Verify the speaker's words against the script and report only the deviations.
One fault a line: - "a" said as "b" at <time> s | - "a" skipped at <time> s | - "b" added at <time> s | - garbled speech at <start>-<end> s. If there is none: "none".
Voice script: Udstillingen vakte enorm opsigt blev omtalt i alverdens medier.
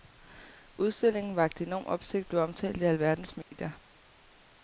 none